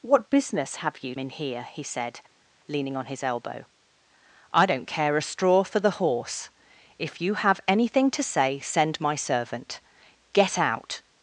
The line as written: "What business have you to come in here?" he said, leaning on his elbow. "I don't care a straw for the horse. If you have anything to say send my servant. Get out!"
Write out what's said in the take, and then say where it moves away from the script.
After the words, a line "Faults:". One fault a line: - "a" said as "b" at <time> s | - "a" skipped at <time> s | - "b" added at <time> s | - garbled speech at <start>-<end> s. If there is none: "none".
"What business have you in here?" he said, leaning on his elbow. "I don't care a straw for the horse. If you have anything to say send my servant. Get out!"
Faults:
- "to come" skipped at 1.1 s